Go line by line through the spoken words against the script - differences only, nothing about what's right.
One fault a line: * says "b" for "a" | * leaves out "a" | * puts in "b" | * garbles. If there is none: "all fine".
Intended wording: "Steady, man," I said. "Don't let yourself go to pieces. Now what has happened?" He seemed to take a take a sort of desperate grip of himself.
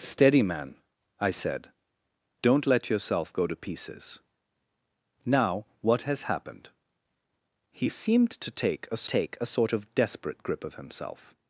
all fine